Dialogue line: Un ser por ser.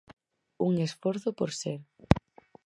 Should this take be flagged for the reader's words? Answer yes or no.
yes